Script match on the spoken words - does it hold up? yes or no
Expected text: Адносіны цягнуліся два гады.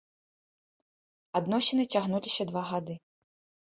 yes